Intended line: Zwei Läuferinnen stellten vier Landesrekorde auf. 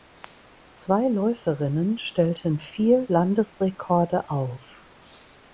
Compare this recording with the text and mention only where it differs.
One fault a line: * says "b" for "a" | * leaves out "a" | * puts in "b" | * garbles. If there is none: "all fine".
all fine